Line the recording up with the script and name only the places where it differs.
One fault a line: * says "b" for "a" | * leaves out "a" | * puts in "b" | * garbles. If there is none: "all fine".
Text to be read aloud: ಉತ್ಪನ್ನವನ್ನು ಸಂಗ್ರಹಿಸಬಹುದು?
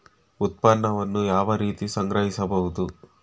* puts in "ಯಾವ ರೀತಿ"